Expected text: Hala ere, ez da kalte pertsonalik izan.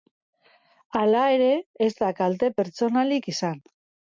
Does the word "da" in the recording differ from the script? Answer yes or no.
no